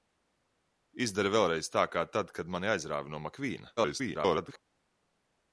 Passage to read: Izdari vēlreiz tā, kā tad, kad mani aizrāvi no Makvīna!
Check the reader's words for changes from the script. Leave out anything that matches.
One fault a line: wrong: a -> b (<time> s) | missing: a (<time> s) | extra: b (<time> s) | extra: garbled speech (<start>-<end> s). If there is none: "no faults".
extra: garbled speech (3.8-4.6 s)